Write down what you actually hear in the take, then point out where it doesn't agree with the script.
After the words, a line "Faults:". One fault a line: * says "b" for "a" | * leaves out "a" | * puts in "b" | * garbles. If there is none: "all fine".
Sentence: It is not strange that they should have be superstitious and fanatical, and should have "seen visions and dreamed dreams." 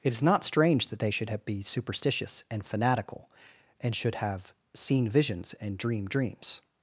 It is not strange that they should have be superstitious and fanatical, and should have "seen visions and dreamed dreams."
Faults:
all fine